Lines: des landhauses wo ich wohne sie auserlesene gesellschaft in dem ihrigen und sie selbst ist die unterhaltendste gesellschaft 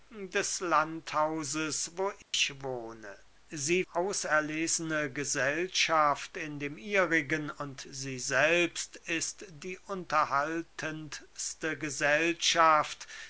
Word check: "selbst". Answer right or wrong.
right